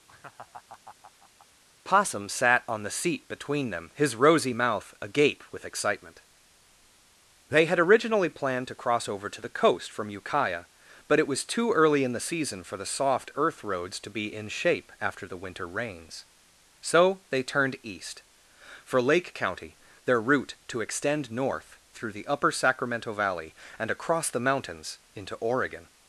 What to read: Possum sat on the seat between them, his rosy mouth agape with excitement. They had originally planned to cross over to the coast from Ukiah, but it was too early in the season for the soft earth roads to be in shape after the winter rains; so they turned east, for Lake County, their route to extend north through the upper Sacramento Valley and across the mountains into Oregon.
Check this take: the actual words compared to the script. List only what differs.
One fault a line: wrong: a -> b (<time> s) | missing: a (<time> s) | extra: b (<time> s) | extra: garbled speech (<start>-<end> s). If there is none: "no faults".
no faults